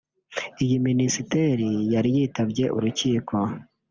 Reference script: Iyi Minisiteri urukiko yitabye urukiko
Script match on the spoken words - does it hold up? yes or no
no